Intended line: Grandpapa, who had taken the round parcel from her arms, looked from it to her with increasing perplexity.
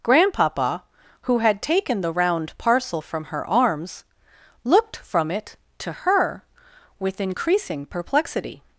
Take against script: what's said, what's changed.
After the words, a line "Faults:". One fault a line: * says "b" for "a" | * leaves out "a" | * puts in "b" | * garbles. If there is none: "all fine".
Grandpapa, who had taken the round parcel from her arms, looked from it to her with increasing perplexity.
Faults:
all fine